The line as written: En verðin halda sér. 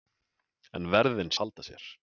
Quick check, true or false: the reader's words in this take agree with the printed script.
true